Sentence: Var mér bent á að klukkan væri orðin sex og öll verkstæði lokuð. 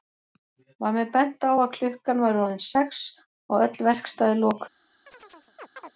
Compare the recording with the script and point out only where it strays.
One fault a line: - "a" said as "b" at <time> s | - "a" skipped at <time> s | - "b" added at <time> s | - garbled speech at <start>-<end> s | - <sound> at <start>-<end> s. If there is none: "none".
- chirp at 5.1-5.9 s